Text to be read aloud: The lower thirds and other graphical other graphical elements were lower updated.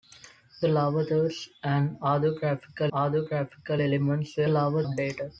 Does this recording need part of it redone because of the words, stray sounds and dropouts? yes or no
no